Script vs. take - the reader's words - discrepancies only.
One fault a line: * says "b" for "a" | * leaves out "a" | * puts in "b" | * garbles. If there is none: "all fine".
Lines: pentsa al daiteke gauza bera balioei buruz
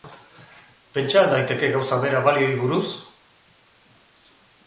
all fine